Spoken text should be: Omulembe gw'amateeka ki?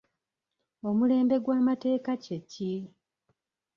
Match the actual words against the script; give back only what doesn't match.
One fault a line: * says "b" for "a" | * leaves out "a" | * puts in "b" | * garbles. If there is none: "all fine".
* puts in "kye"